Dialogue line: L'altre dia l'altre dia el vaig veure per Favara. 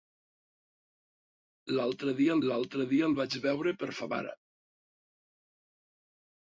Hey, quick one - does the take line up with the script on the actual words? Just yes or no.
yes